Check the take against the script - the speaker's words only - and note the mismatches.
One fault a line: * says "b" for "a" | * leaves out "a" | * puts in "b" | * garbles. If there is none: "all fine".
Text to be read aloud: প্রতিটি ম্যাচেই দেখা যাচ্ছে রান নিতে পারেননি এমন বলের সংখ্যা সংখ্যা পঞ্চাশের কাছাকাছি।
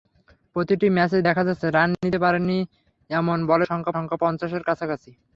all fine